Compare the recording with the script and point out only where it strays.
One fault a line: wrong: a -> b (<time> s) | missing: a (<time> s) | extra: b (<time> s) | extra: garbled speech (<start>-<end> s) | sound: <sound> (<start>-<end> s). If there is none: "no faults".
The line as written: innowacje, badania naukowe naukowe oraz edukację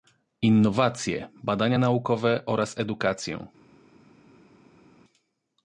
missing: naukowe (2.4 s)